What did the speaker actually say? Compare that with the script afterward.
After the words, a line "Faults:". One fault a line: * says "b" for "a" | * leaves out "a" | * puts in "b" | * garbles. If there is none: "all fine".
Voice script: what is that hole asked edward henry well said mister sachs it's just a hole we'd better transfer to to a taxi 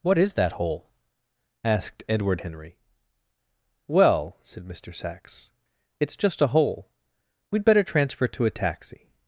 what is that hole asked edward henry well said mister sachs it's just a hole we'd better transfer to a taxi
Faults:
* leaves out "to"